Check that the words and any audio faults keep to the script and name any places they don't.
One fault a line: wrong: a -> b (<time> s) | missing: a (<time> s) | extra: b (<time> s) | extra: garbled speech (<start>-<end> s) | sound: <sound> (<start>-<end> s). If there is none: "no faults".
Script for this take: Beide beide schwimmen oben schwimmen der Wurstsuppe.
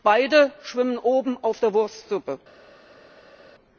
missing: beide (0.5 s)
wrong: schwimmen -> auf (1.4 s)